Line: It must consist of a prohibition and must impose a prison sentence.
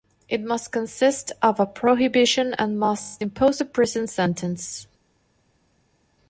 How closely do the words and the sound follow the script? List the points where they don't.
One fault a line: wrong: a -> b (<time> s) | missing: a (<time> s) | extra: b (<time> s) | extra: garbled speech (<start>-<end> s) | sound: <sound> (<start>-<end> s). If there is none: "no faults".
no faults